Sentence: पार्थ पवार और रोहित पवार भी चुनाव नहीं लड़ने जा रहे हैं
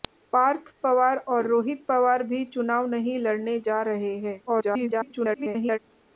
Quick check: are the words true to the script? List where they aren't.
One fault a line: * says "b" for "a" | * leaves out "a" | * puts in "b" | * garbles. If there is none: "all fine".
* garbles